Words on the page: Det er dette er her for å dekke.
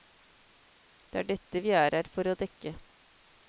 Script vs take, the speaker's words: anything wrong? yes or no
yes